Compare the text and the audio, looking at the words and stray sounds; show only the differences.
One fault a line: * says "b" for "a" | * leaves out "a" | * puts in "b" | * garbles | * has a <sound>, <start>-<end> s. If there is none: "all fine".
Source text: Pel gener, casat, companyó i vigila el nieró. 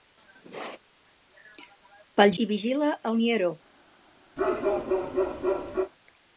* leaves out "gener casat companyó"
* has a bark, 4.4-5.9 s